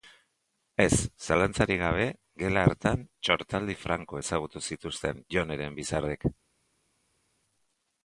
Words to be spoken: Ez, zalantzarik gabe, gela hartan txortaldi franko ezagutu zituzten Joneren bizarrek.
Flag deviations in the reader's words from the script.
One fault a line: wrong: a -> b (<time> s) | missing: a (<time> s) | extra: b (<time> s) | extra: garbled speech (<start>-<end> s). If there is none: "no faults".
no faults